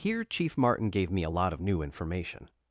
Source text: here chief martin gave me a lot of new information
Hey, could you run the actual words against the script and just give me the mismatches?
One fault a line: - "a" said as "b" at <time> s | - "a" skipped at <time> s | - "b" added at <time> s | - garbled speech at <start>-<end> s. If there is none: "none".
none